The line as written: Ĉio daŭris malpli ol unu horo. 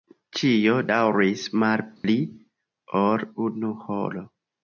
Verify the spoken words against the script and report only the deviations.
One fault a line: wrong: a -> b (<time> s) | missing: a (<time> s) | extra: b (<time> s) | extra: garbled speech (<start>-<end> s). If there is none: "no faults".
no faults